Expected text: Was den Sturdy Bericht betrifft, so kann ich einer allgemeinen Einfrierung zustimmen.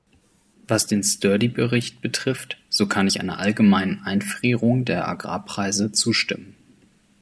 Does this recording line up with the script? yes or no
no